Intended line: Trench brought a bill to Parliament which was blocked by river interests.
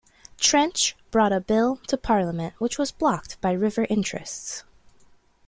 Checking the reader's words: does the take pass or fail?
pass